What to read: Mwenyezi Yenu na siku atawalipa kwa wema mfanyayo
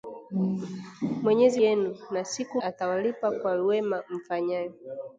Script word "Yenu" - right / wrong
right